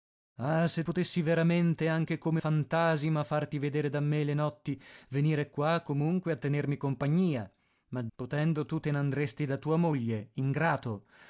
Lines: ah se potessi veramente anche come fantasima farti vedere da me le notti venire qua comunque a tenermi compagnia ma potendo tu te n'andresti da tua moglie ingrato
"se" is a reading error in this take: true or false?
false